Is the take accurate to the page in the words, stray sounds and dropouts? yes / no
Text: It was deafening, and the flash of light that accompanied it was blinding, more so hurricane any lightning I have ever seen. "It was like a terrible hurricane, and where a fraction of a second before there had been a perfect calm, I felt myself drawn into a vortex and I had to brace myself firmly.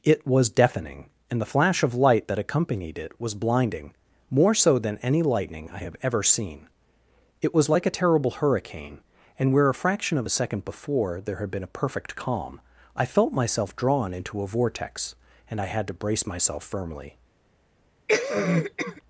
no